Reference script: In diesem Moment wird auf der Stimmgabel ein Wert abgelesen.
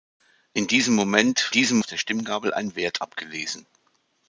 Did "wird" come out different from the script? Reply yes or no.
yes